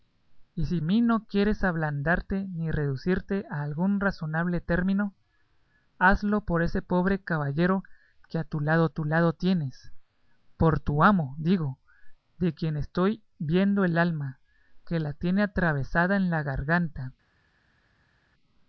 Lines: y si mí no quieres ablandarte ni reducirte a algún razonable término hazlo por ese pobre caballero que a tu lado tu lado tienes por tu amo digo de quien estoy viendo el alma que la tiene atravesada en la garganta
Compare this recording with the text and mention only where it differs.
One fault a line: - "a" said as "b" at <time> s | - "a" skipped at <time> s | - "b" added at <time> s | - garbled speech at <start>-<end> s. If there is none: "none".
none